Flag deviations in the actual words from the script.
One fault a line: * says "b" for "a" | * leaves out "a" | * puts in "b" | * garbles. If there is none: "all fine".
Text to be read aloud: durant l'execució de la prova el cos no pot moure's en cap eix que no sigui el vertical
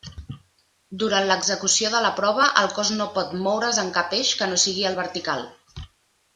all fine